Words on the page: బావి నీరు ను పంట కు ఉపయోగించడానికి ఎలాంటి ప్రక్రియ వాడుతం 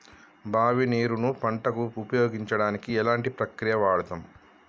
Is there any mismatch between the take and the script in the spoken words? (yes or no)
no